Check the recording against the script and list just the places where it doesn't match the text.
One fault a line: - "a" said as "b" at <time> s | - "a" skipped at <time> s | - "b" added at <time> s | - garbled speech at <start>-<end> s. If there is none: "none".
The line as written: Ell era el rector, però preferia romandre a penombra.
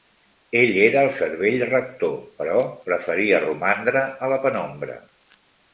- "cervell" added at 1.2 s
- "la" added at 4.3 s